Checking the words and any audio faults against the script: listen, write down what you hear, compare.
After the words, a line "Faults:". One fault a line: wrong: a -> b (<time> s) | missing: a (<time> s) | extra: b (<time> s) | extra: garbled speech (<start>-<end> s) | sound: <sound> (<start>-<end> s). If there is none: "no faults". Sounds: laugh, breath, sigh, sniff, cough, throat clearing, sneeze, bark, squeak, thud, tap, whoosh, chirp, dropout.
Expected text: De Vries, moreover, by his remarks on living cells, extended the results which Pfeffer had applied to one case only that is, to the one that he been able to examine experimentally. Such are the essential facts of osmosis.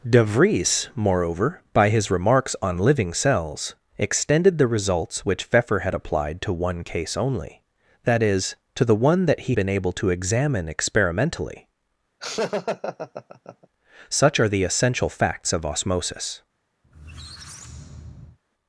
De Vries, moreover, by his remarks on living cells, extended the results which Pfeffer had applied to one case only that is, to the one that he been able to examine experimentally. Such are the essential facts of osmosis.
Faults:
sound: laugh (12.2-13.7 s)
sound: squeak (16.8-18.4 s)